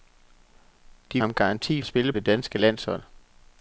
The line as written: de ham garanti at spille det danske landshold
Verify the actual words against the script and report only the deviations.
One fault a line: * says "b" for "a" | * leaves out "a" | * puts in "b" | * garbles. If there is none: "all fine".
all fine